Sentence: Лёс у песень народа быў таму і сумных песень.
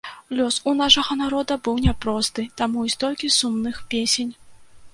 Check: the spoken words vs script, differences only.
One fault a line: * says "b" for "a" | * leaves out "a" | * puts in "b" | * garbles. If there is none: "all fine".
* says "нашага" for "песень"
* puts in "няпросты"
* puts in "столькі"